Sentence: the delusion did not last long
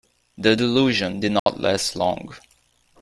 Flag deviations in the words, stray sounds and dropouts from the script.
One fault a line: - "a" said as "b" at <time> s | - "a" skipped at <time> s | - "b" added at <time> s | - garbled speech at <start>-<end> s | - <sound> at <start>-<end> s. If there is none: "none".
- dropout at 1.4-1.5 s